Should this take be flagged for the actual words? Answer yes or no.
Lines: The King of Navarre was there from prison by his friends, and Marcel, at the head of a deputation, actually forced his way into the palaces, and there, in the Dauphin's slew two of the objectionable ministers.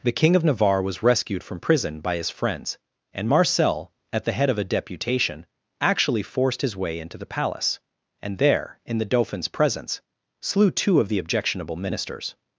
yes